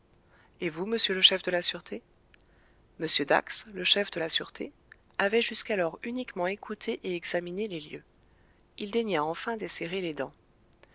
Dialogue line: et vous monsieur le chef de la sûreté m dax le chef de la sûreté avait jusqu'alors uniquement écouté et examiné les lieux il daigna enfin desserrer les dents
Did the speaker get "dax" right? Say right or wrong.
right